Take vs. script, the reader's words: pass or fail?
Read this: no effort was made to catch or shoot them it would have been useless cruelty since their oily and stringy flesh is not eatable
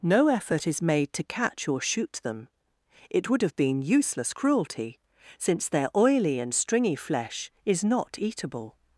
fail